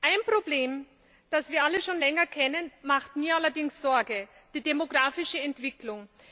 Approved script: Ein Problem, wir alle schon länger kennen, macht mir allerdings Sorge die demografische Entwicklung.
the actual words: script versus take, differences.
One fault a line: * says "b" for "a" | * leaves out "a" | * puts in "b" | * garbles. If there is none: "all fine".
* puts in "das"